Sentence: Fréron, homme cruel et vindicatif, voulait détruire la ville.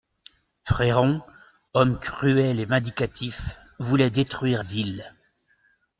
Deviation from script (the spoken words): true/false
true